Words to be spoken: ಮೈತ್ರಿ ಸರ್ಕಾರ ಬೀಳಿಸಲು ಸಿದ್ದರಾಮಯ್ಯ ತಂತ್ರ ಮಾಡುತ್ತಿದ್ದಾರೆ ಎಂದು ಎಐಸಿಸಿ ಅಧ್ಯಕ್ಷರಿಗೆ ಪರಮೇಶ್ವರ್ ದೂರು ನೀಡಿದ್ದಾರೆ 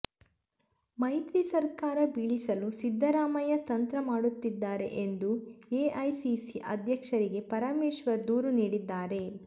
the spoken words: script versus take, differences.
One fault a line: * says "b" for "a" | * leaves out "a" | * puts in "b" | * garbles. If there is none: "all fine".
all fine